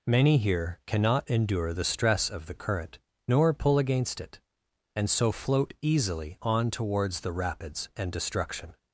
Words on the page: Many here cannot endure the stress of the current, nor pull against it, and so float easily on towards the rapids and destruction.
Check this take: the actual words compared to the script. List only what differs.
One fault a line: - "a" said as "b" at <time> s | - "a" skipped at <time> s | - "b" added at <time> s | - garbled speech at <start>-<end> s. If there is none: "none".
none